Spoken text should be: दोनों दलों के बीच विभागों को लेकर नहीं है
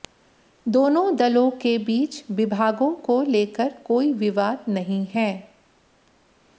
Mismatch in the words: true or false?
true